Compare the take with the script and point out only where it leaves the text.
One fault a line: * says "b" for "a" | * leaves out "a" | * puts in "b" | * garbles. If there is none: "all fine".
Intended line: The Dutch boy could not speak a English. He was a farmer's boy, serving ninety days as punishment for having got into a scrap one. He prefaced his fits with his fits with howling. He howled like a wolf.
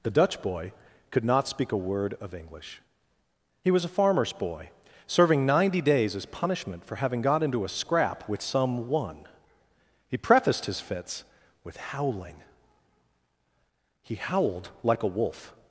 * puts in "word of"
* puts in "with some"
* leaves out "his fits with"